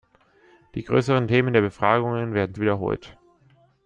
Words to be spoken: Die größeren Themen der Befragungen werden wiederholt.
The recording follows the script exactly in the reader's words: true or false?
true